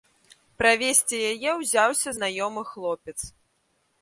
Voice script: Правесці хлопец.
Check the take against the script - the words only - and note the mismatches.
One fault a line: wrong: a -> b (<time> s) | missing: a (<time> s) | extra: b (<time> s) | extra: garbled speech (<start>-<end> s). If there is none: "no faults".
extra: яе ўзяўся знаёмы (1.3 s)